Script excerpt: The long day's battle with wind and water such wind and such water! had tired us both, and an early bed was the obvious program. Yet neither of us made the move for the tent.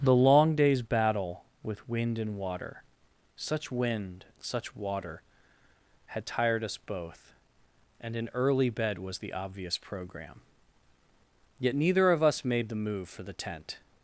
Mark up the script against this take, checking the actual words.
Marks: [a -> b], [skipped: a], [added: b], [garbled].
The long day's battle with wind and water such wind [skipped: and] such water! had tired us both, and an early bed was the obvious program. Yet neither of us made the move for the tent.